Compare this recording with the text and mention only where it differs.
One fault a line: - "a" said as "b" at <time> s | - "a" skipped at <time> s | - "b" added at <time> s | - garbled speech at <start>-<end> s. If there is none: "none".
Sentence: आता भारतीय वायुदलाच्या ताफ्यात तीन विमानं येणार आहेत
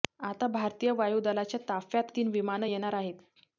none